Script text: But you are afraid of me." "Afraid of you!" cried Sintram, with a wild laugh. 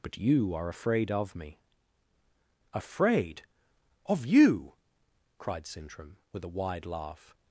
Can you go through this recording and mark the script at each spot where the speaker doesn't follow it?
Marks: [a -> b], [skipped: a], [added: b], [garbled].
But you are afraid of me." "Afraid of you!" cried Sintram, with a [wild -> wide] laugh.